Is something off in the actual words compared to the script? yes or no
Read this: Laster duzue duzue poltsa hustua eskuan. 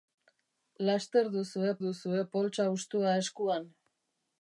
no